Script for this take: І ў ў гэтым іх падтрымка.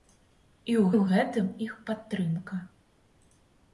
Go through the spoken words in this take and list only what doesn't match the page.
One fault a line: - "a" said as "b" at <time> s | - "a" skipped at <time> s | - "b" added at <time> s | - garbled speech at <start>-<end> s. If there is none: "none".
none